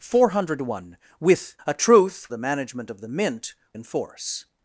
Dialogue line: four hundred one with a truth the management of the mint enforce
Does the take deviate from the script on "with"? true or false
false